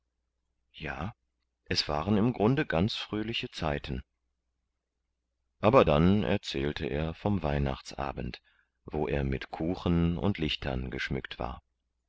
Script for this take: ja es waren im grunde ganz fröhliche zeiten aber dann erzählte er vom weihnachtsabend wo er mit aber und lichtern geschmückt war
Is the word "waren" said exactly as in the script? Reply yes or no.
yes